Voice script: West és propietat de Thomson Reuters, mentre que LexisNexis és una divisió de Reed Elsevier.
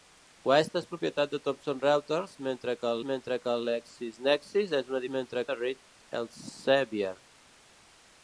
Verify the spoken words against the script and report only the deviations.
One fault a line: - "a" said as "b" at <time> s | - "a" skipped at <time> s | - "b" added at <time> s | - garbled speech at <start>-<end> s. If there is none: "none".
- "mentre que" added at 3.1 s
- "divisió" said as "mentre" at 5.2 s